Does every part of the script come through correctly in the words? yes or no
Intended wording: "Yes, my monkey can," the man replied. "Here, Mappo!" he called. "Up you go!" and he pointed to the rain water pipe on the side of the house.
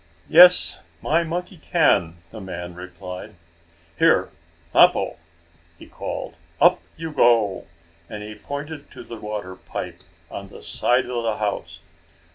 no